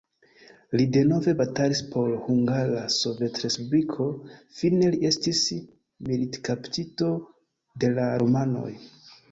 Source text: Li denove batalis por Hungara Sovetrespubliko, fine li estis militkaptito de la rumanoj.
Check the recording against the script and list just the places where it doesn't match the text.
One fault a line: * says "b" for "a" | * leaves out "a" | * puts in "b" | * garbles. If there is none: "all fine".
all fine